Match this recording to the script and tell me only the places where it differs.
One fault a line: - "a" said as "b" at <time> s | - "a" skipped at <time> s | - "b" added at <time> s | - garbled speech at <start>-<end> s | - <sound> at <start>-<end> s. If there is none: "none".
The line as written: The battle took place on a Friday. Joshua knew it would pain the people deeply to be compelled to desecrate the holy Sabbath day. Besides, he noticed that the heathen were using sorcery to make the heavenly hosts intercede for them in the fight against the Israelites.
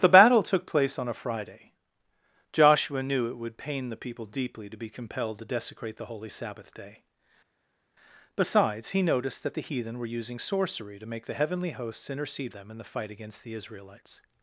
- "for" skipped at 12.5 s